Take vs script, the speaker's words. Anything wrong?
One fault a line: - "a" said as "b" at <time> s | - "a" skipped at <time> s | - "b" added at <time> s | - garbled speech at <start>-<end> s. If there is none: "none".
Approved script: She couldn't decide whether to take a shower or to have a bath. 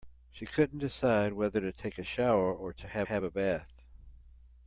- "have" added at 3.0 s